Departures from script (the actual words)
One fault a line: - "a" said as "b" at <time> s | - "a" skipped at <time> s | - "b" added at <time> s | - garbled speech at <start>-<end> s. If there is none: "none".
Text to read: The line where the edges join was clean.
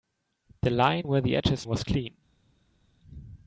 - "join" skipped at 1.6 s